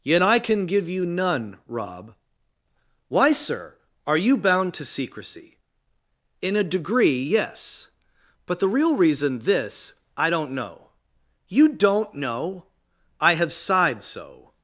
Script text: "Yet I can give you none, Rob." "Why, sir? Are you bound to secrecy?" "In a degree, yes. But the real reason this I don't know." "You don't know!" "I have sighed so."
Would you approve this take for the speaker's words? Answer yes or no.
yes